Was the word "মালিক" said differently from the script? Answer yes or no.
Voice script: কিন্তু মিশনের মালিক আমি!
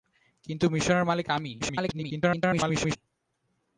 no